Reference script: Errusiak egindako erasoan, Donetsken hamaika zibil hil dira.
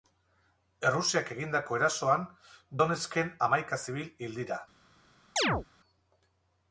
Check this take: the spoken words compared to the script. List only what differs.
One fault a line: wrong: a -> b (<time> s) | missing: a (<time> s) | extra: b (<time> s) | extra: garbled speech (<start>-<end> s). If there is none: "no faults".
no faults